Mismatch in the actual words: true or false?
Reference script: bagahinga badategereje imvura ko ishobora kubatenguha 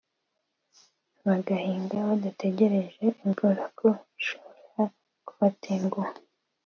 false